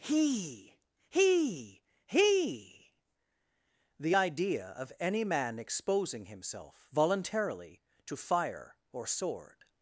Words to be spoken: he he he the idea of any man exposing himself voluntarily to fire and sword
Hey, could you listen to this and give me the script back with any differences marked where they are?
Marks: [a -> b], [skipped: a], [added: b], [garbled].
he he he the idea of any man exposing himself voluntarily to fire [and -> or] sword